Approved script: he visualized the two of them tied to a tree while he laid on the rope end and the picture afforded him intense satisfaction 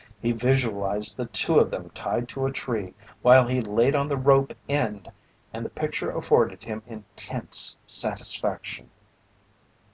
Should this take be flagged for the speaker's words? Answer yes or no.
no